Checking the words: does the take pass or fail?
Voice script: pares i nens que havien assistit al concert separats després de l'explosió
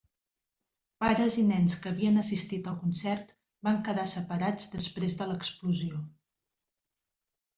fail